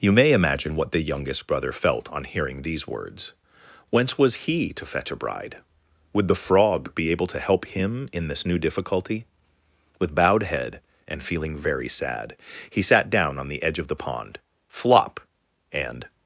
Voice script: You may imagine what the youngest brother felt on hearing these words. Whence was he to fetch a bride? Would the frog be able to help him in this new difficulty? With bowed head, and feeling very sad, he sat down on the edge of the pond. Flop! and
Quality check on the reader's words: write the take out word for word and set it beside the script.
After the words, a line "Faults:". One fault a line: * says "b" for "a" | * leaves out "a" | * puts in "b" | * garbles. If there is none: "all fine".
You may imagine what the youngest brother felt on hearing these words. Whence was he to fetch a bride? Would the frog be able to help him in this new difficulty? With bowed head, and feeling very sad, he sat down on the edge of the pond. Flop! and
Faults:
all fine